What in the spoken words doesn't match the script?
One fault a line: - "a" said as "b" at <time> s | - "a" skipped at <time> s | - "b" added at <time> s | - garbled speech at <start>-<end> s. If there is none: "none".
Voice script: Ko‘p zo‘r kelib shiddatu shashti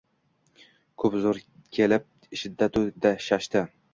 none